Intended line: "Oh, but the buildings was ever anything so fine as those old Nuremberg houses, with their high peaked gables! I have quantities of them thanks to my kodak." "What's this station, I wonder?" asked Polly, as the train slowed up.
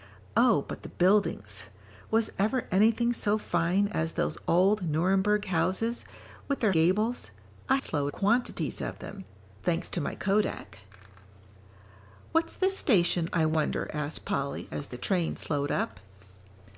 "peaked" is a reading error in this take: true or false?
true